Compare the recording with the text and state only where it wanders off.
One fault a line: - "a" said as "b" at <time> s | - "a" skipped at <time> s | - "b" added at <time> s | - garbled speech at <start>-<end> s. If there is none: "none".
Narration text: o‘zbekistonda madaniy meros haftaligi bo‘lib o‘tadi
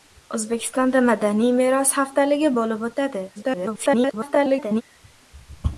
- garbled speech at 3.4-4.8 s